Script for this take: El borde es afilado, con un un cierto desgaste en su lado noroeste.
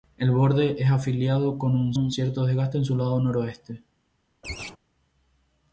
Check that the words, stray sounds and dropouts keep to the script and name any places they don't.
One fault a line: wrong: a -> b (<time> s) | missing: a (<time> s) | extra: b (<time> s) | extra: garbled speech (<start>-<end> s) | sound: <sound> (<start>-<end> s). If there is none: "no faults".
sound: laugh (4.4-4.8 s)